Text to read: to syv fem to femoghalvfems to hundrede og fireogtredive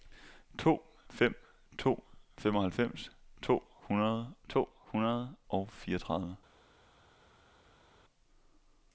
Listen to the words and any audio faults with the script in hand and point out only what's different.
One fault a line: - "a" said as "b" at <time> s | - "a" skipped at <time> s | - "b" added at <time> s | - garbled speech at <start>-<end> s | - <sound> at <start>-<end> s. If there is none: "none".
- "syv" skipped at 0.8 s
- "to hundrede" added at 4.5 s